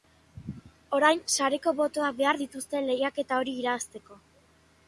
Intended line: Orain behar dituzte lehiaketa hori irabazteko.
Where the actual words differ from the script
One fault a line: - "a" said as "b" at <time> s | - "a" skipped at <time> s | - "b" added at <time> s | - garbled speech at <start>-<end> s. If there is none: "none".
- "sareko botoak" added at 1.4 s